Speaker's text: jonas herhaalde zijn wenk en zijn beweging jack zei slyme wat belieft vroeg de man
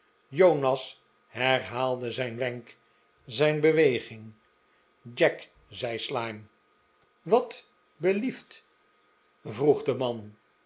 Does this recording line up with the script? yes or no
no